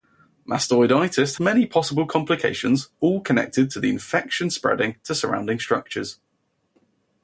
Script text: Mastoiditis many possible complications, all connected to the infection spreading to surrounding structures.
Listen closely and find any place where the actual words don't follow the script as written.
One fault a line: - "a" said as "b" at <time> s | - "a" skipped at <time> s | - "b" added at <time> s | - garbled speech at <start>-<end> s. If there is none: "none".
none